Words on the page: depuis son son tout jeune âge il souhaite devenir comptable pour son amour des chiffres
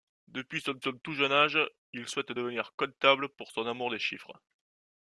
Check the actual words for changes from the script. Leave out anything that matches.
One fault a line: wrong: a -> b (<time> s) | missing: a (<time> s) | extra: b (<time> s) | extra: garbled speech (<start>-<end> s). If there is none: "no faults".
no faults